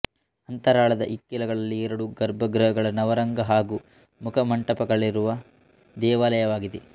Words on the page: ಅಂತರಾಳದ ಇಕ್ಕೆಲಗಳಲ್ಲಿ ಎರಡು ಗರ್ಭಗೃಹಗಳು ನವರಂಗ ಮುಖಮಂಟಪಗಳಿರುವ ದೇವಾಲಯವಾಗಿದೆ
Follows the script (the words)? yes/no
no